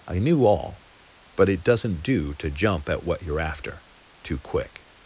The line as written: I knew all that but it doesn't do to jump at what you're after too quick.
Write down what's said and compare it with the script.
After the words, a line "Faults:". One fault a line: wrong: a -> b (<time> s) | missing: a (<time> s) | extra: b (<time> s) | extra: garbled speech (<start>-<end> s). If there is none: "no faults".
I knew all but it doesn't do to jump at what you're after too quick.
Faults:
missing: that (0.8 s)